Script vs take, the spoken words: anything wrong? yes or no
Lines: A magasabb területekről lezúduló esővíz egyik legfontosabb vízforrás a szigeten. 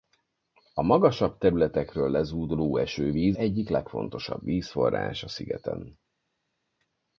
no